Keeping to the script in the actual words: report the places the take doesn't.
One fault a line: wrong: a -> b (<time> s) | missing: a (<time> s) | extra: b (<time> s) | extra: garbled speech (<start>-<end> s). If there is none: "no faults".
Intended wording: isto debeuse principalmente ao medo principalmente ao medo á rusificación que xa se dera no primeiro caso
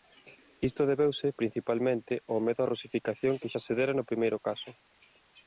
missing: principalmente ao medo (2.6 s)